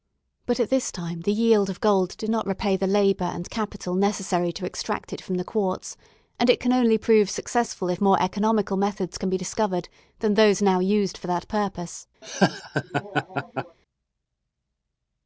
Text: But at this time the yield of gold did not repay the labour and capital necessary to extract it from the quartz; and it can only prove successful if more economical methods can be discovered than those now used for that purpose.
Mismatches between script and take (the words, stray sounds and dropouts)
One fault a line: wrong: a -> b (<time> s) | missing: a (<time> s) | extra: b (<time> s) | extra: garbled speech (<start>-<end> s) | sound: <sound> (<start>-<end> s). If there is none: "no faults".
sound: laugh (12.2-13.8 s)